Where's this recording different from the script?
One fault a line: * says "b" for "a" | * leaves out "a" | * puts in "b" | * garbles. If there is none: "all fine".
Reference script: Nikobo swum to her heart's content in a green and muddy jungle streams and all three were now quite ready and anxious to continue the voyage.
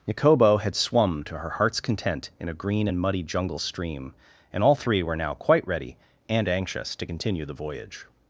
* puts in "had"
* says "stream" for "streams"